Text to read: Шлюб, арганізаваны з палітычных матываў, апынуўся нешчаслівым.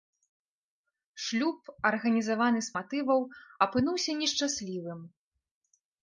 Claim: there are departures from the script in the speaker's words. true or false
true